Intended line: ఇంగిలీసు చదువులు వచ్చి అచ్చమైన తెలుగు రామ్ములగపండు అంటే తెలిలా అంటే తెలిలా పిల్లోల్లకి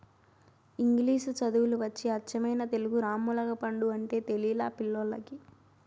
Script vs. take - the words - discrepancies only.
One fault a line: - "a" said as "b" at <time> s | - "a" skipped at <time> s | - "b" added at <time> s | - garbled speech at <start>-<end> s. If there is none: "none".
- "అంటే తెలిలా" skipped at 4.7 s